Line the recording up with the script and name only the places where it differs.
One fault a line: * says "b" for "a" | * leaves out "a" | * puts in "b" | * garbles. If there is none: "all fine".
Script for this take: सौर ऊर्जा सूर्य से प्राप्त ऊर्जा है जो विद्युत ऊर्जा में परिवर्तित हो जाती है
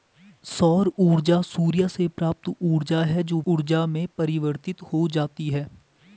* leaves out "विद्युत"